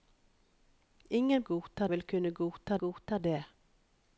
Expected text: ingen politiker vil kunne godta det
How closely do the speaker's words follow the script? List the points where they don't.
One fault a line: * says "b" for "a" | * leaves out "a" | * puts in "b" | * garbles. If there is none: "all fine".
* says "godta" for "politiker"
* puts in "godta"